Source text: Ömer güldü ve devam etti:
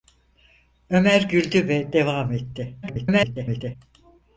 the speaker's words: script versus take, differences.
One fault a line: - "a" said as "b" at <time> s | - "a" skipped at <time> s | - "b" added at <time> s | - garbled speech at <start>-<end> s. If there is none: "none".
- garbled speech at 2.8-3.8 s